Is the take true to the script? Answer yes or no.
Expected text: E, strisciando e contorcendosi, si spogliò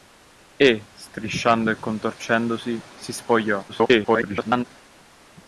no